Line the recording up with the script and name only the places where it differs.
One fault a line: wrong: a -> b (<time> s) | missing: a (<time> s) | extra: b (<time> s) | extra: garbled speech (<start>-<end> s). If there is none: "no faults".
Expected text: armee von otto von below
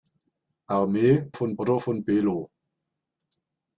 no faults